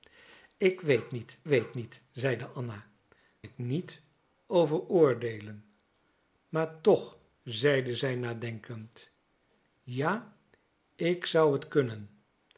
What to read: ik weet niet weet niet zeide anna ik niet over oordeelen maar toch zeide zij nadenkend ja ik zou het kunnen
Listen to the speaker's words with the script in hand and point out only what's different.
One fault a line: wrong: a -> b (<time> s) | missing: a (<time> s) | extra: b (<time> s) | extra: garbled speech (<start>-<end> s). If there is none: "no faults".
no faults